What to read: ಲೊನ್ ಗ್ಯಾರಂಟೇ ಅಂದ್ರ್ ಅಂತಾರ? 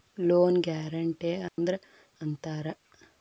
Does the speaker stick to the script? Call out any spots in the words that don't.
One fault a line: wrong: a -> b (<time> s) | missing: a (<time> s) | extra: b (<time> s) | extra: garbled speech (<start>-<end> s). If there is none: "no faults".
no faults